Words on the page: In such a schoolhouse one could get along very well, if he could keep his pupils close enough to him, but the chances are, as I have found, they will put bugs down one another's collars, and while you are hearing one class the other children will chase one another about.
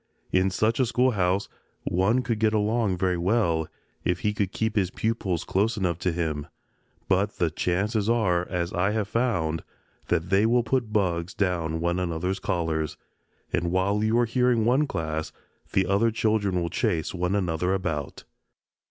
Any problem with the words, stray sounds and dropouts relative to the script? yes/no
yes